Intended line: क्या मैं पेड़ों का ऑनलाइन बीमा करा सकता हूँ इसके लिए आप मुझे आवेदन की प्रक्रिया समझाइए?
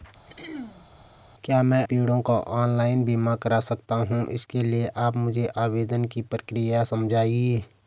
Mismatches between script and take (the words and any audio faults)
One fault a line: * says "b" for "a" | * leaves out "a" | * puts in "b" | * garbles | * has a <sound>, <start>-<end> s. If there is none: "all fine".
* has a throat clearing, 0.3-0.9 s